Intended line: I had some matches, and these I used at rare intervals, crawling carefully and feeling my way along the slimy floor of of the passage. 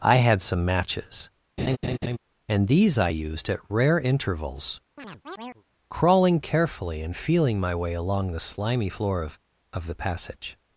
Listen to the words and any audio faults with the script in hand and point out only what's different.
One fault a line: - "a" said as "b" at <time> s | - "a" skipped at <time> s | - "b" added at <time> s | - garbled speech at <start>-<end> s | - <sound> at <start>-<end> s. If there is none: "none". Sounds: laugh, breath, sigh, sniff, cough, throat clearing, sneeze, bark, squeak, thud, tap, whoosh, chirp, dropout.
- laugh at 1.6-2.2 s
- chirp at 5.0-5.6 s